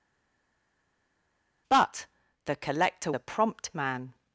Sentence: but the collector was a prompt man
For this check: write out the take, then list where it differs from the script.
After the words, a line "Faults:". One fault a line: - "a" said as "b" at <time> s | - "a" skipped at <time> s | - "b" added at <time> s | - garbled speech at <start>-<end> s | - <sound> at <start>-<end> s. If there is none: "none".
but the collector a prompt man
Faults:
- "was" skipped at 3.1 s